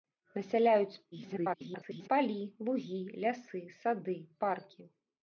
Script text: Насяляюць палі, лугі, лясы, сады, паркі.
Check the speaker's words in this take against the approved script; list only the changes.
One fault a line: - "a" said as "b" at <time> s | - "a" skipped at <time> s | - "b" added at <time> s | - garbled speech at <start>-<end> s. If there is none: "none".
- garbled speech at 1.1-2.1 s